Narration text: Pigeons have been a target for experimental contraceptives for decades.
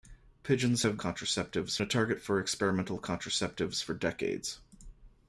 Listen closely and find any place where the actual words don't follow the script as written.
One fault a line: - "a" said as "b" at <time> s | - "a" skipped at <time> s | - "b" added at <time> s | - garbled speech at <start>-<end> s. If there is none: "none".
- "been" said as "contraceptives" at 0.9 s